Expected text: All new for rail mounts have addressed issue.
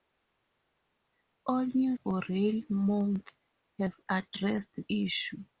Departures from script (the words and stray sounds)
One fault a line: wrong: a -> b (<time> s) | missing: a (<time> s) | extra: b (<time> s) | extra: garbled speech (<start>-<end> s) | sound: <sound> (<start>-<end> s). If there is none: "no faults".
no faults